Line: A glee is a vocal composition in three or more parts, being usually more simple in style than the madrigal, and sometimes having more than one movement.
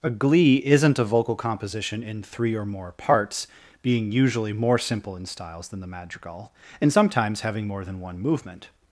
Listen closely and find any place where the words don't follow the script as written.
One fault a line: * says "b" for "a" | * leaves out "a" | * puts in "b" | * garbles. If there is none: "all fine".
* says "isn't" for "is"
* says "styles" for "style"